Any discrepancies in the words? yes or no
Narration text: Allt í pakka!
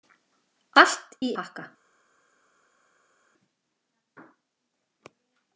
no